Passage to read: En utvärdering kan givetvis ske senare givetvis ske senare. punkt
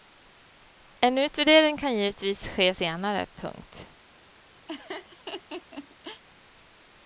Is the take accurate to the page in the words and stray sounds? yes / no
no